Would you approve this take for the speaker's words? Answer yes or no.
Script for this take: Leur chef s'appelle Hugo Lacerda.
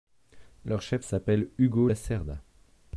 yes